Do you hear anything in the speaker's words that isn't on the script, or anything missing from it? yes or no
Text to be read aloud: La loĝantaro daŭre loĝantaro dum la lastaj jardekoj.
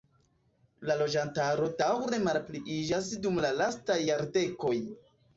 yes